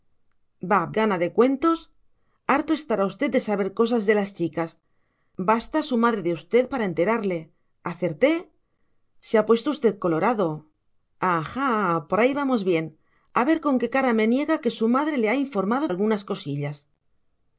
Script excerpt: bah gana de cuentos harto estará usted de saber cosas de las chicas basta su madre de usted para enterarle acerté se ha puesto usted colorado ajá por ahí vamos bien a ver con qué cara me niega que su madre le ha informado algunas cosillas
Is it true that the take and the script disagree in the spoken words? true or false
false